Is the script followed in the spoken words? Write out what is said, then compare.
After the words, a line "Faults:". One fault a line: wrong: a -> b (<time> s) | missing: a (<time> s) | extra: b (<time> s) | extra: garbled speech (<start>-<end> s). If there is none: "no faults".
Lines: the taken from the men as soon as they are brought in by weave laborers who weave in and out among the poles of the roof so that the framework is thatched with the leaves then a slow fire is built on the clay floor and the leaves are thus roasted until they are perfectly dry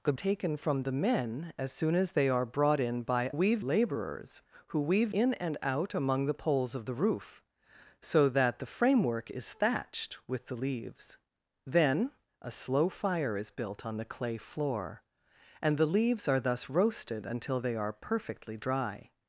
the taken from the men as soon as they are brought in by weave laborers who weave in and out among the poles of the roof so that the framework is thatched with the leaves then a slow fire is built on the clay floor and the leaves are thus roasted until they are perfectly dry
Faults:
no faults